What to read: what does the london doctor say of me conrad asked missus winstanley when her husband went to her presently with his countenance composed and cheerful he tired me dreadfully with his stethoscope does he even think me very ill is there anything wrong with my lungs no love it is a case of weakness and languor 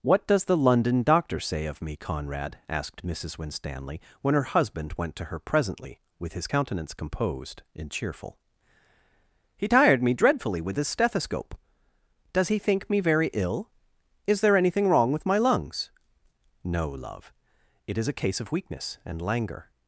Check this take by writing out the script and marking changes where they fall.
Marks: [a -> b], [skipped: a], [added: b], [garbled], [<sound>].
what does the london doctor say of me conrad asked missus winstanley when her husband went to her presently with his countenance composed and cheerful he tired me dreadfully with his stethoscope does he [skipped: even] think me very ill is there anything wrong with my lungs no love it is a case of weakness and languor